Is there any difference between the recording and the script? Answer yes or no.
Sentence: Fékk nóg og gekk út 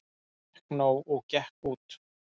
no